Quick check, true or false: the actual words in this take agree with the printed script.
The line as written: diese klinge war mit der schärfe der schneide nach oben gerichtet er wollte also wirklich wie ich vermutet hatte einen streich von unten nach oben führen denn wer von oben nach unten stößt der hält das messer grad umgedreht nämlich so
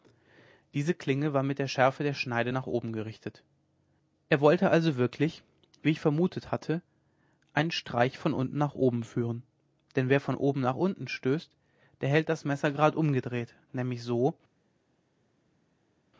true